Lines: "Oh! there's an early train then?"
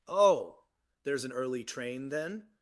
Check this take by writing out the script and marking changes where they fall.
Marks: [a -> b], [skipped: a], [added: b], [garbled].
"Oh! there's an early train then?"